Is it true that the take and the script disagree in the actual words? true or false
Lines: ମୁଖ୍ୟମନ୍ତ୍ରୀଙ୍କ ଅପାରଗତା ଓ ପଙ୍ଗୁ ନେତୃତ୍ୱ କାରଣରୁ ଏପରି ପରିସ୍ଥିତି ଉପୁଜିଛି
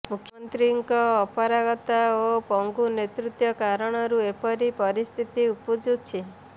false